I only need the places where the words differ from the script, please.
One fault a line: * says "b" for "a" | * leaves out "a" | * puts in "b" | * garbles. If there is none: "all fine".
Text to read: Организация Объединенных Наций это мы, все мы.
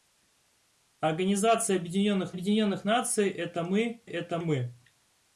* puts in "Объединенных"
* says "это" for "все"